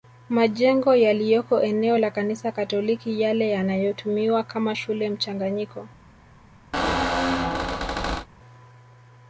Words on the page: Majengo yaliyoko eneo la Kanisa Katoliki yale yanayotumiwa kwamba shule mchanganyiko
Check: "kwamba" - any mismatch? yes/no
yes